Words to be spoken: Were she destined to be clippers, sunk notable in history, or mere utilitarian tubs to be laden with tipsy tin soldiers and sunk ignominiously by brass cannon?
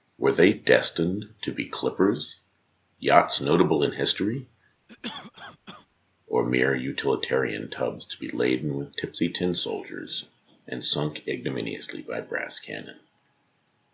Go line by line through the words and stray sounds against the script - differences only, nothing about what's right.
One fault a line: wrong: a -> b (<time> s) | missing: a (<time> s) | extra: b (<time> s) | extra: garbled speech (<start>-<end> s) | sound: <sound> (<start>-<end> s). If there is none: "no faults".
wrong: she -> they (0.3 s)
wrong: sunk -> yachts (3.0 s)
sound: cough (4.9-5.9 s)